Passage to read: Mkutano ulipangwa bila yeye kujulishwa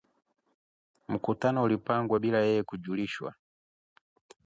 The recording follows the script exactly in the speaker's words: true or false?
true